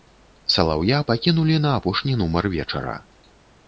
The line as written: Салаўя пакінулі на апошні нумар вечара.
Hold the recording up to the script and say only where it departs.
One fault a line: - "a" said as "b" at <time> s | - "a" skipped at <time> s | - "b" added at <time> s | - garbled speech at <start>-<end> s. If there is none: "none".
none